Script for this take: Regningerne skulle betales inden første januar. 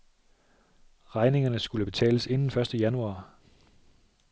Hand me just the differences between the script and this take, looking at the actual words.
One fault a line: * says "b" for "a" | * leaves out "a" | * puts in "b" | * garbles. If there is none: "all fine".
all fine